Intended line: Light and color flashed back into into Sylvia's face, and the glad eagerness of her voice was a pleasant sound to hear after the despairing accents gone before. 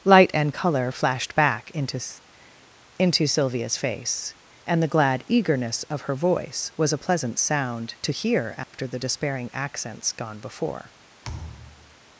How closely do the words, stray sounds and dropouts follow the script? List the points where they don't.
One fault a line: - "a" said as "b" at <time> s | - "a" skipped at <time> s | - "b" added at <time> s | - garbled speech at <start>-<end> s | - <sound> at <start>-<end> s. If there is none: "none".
- dropout at 8.6-8.7 s
- thud at 11.2-12.0 s